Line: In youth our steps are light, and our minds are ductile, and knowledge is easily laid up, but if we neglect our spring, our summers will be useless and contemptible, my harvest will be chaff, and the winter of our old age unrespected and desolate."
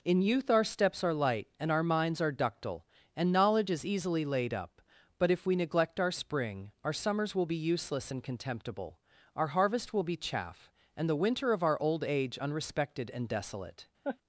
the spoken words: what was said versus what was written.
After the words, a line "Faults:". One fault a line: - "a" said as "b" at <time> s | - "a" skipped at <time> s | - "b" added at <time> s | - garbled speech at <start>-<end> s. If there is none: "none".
In youth our steps are light, and our minds are ductile, and knowledge is easily laid up, but if we neglect our spring, our summers will be useless and contemptible, our harvest will be chaff, and the winter of our old age unrespected and desolate."
Faults:
- "my" said as "our" at 9.4 s